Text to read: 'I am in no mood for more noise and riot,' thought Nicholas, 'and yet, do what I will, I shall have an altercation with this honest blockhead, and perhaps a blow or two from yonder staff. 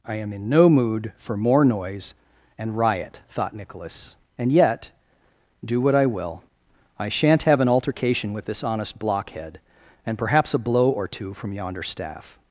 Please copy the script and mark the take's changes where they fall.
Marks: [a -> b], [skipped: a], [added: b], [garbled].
'I am in no mood for more noise and riot,' thought Nicholas, 'and yet, do what I will, I [shall -> shan't] have an altercation with this honest blockhead, and perhaps a blow or two from yonder staff.